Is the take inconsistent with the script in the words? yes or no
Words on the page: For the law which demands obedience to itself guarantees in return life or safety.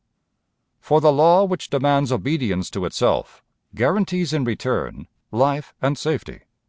yes